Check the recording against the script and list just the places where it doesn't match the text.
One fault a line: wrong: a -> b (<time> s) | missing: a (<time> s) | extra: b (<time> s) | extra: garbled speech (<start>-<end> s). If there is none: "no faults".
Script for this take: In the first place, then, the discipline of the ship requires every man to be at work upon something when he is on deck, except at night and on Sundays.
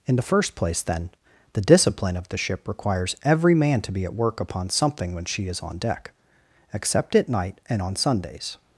wrong: he -> she (5.2 s)